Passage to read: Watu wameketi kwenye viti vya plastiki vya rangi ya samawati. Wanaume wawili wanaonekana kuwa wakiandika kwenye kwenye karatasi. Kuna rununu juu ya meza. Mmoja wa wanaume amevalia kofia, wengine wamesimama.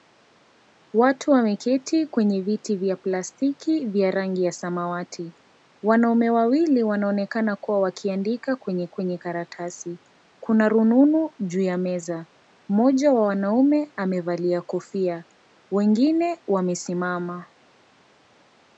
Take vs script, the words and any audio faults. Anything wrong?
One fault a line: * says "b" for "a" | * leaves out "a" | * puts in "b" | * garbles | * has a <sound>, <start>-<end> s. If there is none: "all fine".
all fine